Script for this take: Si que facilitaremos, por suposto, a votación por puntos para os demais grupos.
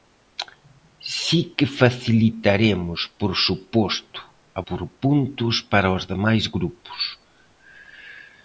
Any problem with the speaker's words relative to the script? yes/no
yes